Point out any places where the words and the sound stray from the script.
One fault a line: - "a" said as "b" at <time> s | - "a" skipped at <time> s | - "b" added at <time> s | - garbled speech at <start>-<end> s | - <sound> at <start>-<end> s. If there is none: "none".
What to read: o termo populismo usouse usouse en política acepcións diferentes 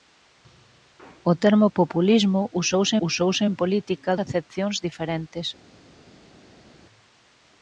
none